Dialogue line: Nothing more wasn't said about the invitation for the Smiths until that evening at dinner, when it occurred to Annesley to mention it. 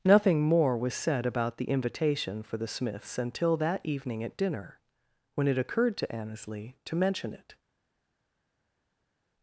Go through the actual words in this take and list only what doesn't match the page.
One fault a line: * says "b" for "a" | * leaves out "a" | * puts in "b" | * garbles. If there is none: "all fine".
* says "was" for "wasn't"